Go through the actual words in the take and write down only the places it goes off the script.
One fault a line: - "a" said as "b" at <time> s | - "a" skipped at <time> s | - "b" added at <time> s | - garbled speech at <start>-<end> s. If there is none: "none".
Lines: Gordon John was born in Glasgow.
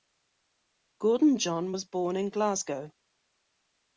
none